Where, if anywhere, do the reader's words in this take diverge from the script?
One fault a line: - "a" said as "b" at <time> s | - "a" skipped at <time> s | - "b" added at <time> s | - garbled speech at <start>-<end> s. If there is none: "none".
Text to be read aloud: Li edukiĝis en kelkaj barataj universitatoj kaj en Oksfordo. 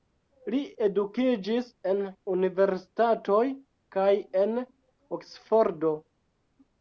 - "kelkaj barataj" skipped at 2.0 s